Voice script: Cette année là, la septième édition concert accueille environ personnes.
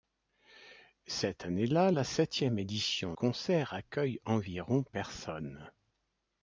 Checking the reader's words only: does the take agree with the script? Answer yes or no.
yes